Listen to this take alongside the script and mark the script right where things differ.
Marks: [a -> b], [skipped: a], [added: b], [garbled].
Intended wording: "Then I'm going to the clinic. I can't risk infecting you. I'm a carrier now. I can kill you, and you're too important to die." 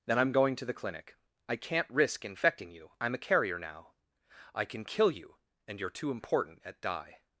"Then I'm going to the clinic. I can't risk infecting you. I'm a carrier now. I can kill you, and you're too important [to -> at] die."